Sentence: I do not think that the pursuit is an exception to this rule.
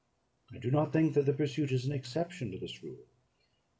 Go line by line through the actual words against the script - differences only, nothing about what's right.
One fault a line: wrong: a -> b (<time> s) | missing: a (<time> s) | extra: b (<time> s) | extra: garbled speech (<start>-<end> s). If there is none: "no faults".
no faults